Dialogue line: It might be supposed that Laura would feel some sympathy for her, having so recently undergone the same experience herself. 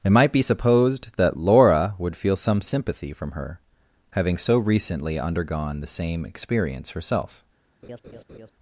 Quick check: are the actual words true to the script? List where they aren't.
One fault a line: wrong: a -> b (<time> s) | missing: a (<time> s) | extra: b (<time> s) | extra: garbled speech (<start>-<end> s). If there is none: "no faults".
wrong: for -> from (3.1 s)